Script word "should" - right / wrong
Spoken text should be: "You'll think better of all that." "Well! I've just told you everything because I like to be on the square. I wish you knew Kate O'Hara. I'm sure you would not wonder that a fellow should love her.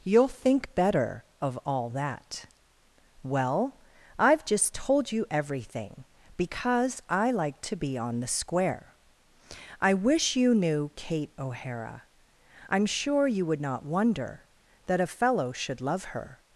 right